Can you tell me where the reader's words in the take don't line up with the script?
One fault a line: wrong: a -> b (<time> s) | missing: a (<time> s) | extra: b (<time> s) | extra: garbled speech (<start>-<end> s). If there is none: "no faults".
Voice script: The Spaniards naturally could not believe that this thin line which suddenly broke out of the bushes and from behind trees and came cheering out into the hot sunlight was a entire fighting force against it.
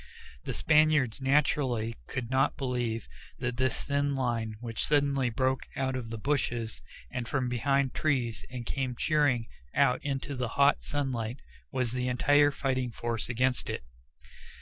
wrong: a -> the (11.9 s)